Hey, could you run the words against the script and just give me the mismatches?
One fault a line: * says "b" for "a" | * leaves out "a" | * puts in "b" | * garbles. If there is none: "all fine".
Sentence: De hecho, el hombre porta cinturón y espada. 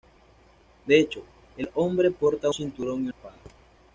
all fine